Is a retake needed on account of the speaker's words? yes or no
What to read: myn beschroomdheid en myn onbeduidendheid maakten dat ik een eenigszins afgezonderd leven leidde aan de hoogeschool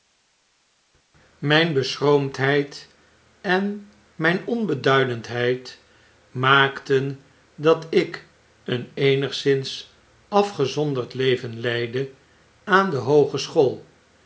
no